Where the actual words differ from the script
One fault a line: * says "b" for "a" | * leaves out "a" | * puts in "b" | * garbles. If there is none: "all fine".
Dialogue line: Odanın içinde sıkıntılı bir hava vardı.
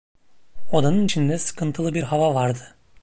all fine